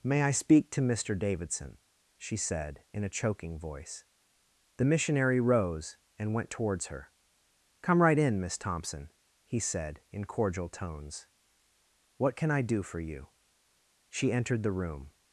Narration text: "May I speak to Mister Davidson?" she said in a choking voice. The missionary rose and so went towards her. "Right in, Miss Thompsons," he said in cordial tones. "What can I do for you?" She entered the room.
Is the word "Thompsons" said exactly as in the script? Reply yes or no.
no